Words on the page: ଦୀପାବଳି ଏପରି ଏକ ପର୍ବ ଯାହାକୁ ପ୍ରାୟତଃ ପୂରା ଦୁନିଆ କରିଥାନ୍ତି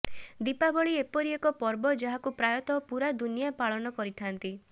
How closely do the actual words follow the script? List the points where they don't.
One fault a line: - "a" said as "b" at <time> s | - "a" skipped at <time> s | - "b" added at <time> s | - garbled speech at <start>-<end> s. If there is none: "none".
- "ପାଳନ" added at 3.6 s